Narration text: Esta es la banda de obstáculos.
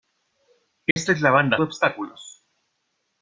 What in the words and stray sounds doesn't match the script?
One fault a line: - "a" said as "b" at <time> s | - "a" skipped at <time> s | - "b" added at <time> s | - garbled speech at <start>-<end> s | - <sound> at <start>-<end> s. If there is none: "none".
- dropout at 0.9-1.0 s